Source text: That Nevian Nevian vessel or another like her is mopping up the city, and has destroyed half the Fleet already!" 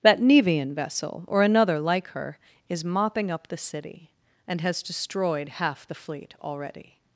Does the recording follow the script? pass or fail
fail